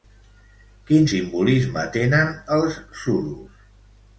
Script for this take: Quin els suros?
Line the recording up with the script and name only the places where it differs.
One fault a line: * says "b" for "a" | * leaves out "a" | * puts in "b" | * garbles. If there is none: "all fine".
* puts in "simbolisme tenen"